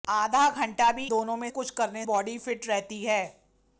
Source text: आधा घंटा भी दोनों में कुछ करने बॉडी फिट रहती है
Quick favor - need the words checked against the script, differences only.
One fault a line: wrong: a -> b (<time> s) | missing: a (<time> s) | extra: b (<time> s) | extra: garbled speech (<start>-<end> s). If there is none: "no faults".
no faults